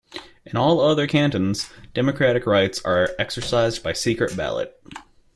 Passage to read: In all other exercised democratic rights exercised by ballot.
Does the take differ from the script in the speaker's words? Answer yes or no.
yes